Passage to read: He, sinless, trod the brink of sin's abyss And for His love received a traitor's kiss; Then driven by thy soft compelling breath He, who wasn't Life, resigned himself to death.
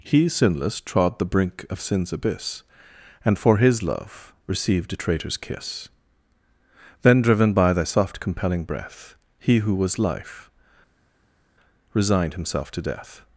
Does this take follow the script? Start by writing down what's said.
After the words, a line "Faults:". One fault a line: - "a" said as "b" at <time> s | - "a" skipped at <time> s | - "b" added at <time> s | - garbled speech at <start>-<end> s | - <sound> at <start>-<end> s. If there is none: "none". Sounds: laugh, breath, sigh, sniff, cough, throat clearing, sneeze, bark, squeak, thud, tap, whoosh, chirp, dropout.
He, sinless, trod the brink of sin's abyss And for His love received a traitor's kiss; Then driven by thy soft compelling breath He, who was Life, resigned himself to death.
Faults:
- "wasn't" said as "was" at 9.8 s